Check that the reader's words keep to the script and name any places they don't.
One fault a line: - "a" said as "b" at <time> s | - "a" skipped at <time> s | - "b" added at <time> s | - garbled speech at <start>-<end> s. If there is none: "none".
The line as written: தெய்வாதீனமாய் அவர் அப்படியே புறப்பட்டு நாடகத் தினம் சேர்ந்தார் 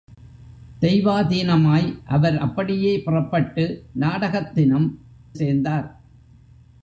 none